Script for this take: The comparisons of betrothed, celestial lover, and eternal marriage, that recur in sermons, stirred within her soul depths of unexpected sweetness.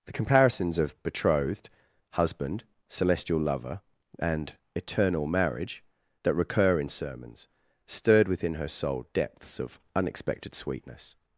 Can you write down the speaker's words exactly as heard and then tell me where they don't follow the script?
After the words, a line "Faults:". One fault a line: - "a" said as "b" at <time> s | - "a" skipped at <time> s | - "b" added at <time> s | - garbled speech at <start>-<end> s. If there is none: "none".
The comparisons of betrothed, husband, celestial lover, and eternal marriage, that recur in sermons, stirred within her soul depths of unexpected sweetness.
Faults:
- "husband" added at 2.1 s